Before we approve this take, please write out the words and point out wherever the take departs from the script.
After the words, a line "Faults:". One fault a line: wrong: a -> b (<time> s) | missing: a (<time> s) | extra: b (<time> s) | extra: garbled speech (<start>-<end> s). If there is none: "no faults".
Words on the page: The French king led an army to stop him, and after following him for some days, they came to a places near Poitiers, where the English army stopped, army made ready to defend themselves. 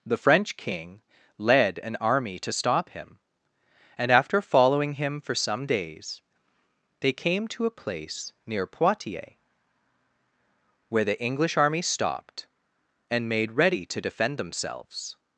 The French king led an army to stop him, and after following him for some days, they came to a place near Poitiers, where the English army stopped, and made ready to defend themselves.
Faults:
wrong: places -> place (7.7 s)
wrong: army -> and (13.1 s)